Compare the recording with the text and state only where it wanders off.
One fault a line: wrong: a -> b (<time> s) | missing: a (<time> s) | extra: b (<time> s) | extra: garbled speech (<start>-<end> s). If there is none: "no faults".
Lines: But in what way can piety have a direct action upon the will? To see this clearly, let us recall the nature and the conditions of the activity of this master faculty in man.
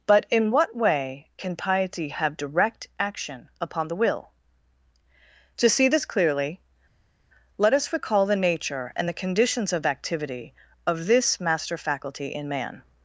missing: a (2.4 s)
missing: the (9.8 s)